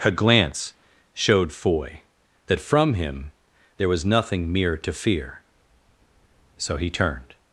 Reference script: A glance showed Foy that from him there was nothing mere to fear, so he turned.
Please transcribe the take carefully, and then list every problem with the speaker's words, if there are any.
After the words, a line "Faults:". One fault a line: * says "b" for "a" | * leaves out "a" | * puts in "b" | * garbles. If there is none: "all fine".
A glance showed Foy that from him there was nothing mere to fear, so he turned.
Faults:
all fine